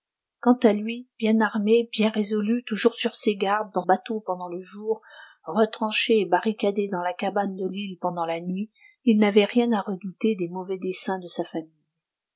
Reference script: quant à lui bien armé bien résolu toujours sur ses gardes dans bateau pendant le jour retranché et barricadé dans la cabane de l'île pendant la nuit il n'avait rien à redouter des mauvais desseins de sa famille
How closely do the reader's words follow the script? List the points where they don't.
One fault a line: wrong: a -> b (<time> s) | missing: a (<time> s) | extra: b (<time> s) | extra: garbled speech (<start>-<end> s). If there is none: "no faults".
no faults